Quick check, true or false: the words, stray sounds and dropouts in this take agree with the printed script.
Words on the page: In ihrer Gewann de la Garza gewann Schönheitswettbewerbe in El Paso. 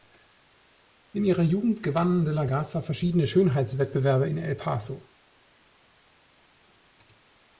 false